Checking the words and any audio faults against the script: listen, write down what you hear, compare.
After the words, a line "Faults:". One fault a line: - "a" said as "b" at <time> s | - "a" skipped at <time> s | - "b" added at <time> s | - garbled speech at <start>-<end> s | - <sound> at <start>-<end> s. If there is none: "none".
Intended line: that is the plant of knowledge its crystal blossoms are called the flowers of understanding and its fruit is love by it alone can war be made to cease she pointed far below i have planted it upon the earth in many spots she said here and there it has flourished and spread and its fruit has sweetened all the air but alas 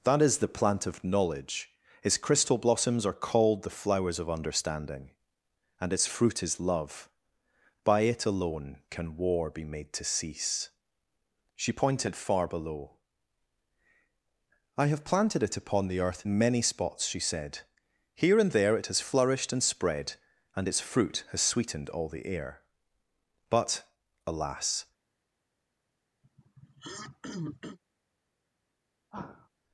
that is the plant of knowledge its crystal blossoms are called the flowers of understanding and its fruit is love by it alone can war be made to cease she pointed far below i have planted it upon the earth in many spots she said here and there it has flourished and spread and its fruit has sweetened all the air but alas
Faults:
- throat clearing at 26.2-27.8 s
- sigh at 29.1-29.5 s